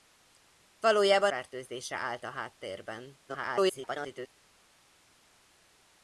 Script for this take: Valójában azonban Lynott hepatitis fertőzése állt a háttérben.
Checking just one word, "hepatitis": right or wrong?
wrong